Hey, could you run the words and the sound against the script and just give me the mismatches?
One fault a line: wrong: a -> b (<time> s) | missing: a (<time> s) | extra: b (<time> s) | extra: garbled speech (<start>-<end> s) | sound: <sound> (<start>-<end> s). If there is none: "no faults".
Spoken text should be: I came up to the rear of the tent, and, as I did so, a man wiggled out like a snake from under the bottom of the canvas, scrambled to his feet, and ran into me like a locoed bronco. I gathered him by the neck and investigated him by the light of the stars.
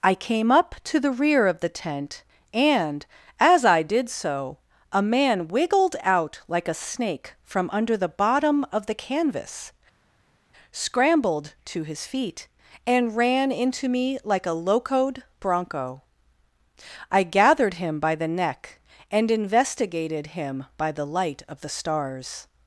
no faults